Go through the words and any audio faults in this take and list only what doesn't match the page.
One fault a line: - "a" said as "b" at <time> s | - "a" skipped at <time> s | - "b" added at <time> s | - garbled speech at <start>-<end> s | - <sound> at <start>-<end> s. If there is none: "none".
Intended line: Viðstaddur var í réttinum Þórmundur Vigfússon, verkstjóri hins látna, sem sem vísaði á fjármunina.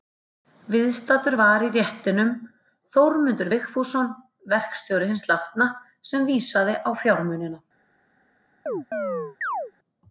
- "sem" skipped at 6.3 s
- chirp at 8.7-9.7 s